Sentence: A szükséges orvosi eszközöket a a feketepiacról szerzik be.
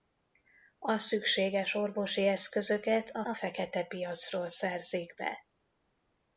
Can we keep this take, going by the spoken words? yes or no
yes